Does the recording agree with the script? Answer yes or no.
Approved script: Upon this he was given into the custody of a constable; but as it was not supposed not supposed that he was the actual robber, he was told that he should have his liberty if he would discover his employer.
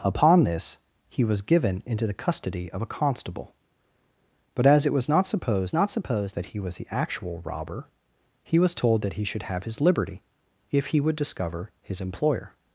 yes